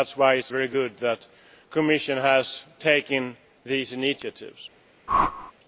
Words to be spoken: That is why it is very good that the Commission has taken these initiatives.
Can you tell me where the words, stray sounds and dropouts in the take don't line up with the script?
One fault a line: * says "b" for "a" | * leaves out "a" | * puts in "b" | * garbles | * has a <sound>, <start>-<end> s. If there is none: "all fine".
* has a whoosh, 5.1-5.5 s